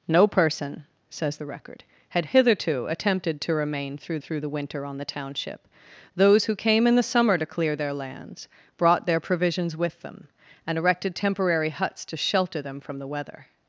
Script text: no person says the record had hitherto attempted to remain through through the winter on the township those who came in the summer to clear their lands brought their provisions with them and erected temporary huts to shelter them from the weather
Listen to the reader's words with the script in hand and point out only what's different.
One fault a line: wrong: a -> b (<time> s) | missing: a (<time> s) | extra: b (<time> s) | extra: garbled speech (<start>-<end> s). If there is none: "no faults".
no faults